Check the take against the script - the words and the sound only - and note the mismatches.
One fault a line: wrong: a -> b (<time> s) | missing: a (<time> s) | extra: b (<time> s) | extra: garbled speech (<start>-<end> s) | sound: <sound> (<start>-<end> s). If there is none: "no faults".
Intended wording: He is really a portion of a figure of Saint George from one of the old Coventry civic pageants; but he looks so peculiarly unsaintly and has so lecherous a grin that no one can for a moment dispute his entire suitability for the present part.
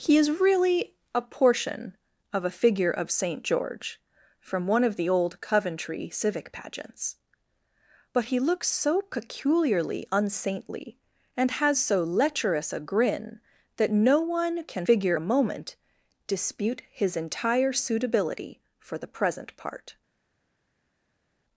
wrong: for -> figure (14.8 s)